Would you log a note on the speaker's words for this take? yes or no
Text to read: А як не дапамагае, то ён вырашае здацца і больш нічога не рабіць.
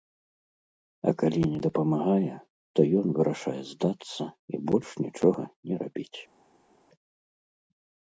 yes